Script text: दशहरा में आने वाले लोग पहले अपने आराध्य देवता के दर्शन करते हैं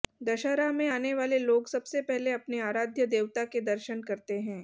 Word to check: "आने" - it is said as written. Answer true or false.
true